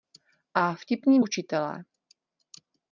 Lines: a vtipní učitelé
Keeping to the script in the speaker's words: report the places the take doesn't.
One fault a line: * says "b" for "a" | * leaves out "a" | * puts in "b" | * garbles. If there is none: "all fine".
all fine